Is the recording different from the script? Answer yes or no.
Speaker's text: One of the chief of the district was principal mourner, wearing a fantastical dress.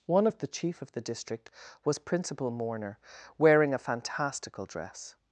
no